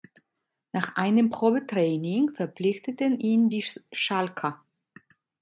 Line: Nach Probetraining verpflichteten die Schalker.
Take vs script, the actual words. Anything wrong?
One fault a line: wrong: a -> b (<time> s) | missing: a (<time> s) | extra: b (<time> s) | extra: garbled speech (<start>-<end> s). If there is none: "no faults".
extra: einem (0.9 s)
extra: ihn (3.2 s)